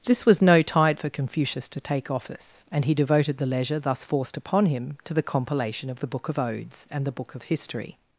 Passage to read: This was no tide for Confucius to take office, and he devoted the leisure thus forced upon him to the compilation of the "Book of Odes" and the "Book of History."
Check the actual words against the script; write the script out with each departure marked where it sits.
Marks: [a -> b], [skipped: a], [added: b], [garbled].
This was no tide for Confucius to take office, and he devoted the leisure thus forced upon him to the compilation of the "Book of Odes" and the "Book of History."